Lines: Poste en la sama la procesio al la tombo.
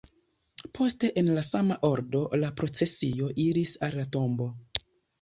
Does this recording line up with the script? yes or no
no